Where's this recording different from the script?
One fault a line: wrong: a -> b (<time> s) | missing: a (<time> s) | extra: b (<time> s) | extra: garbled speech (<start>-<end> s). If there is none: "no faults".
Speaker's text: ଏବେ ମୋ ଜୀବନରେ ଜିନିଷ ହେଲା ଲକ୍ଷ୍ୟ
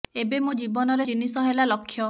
no faults